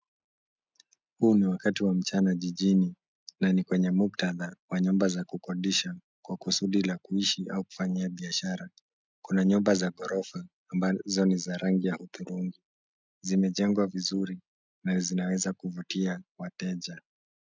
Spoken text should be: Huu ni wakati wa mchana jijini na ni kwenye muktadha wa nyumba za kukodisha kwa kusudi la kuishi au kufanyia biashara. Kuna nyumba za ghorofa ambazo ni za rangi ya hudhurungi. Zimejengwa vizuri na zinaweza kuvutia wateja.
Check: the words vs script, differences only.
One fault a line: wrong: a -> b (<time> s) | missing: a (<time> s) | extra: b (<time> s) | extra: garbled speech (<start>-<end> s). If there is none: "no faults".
no faults